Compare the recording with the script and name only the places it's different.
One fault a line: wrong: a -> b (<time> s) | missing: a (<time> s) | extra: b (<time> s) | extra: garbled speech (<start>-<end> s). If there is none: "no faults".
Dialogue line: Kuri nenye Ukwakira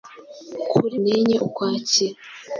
no faults